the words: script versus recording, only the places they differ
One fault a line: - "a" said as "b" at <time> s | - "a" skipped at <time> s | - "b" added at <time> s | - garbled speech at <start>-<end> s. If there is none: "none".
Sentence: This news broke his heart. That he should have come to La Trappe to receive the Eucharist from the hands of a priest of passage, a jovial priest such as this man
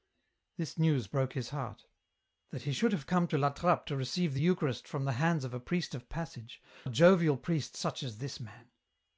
none